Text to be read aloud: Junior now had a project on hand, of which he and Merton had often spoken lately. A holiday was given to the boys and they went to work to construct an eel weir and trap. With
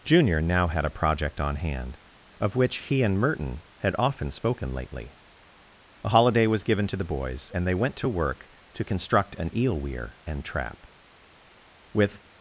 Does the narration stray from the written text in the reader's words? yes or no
no